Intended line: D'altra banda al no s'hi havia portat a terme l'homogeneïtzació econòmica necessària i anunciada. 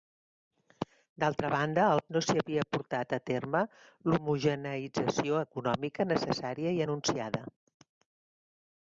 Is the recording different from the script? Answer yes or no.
no